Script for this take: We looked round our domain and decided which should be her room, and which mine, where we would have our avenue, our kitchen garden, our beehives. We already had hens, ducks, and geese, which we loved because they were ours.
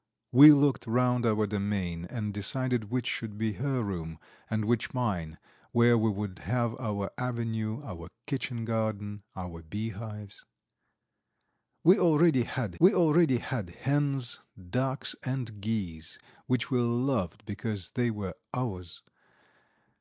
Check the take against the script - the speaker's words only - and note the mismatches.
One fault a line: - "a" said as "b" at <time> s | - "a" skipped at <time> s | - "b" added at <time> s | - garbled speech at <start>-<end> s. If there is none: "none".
- "we already had" added at 12.8 s